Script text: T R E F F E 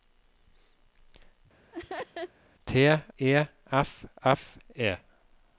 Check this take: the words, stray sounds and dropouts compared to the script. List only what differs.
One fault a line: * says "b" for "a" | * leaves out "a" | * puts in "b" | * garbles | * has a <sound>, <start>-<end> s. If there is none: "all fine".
* has a laugh, 1.7-2.3 s
* leaves out "R"